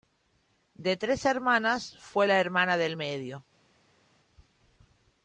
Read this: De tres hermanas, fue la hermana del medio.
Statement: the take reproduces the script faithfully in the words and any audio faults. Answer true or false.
true